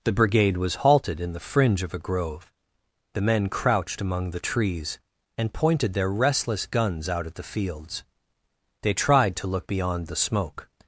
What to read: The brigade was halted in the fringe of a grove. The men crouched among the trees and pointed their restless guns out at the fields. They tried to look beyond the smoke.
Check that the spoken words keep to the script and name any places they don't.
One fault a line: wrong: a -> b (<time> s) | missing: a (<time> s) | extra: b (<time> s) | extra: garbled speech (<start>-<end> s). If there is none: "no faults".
no faults